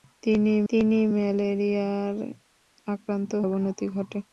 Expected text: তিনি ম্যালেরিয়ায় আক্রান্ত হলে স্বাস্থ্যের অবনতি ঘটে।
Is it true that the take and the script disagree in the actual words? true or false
true